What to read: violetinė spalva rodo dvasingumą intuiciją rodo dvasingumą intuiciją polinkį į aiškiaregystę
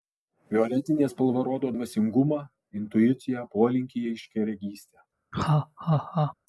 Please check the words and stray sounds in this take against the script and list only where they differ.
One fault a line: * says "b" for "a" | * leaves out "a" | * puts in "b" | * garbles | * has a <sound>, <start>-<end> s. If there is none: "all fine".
* leaves out "rodo dvasingumą intuiciją"
* has a laugh, 5.3-6.3 s